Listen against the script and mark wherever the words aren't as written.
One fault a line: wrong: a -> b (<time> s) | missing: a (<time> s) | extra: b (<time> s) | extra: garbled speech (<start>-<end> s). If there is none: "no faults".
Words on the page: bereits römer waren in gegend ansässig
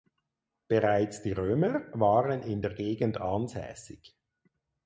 extra: die (1.2 s)
extra: der (2.6 s)